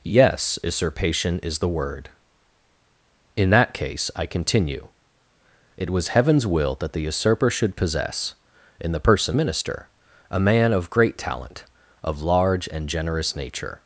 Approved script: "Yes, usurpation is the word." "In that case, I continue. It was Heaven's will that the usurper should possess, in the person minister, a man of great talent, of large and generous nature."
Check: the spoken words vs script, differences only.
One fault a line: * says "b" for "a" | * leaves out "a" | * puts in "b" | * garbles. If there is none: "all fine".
all fine